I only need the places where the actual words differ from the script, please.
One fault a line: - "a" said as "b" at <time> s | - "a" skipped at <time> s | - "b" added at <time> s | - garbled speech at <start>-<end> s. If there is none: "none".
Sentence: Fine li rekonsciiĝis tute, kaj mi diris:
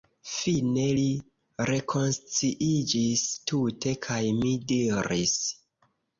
none